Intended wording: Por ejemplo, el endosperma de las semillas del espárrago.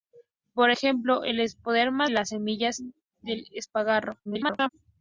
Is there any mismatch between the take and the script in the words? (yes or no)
yes